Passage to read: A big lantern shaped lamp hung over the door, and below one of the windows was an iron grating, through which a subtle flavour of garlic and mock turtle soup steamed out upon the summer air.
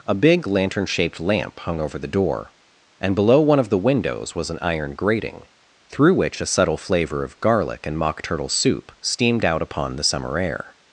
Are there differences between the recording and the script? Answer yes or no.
no